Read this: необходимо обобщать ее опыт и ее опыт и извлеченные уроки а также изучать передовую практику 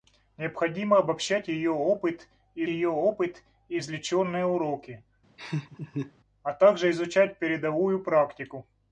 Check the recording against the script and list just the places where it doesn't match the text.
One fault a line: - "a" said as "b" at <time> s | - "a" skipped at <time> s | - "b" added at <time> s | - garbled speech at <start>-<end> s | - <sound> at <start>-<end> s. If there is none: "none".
- laugh at 5.4-6.1 s